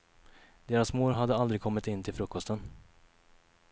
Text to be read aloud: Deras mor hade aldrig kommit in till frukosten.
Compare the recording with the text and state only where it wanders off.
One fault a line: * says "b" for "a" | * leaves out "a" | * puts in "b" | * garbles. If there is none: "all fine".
all fine